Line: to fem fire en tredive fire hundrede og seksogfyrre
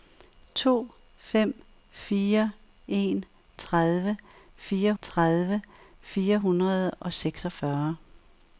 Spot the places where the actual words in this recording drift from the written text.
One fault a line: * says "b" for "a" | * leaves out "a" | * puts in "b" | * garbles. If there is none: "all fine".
* puts in "tredive fire"